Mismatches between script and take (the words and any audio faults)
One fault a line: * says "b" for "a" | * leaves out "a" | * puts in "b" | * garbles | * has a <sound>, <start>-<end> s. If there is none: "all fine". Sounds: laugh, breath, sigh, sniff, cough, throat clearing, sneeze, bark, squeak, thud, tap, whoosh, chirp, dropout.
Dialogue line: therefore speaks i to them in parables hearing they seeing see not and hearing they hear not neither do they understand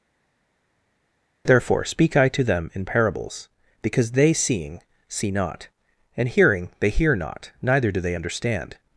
* says "speak" for "speaks"
* says "because" for "hearing"